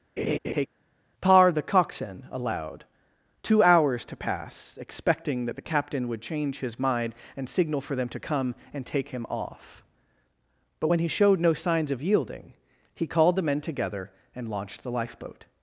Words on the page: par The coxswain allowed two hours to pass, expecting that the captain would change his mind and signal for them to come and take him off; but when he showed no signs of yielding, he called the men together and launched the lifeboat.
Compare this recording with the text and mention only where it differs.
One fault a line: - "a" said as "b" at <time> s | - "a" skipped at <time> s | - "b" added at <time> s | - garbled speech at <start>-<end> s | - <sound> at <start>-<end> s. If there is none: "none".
- laugh at 0.2-0.7 s